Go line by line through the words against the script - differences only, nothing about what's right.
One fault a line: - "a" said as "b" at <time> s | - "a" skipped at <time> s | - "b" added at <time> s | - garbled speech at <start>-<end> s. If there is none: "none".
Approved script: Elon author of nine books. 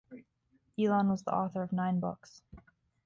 - "was the" added at 1.1 s